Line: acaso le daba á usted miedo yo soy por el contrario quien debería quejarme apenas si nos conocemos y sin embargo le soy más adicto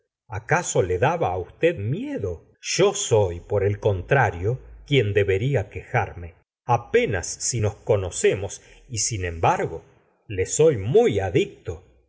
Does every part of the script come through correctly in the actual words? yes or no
no